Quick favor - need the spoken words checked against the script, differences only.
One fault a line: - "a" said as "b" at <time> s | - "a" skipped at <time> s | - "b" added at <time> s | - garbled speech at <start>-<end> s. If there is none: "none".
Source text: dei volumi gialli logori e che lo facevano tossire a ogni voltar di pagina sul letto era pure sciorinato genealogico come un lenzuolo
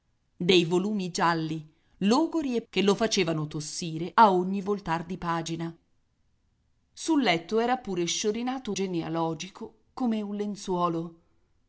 none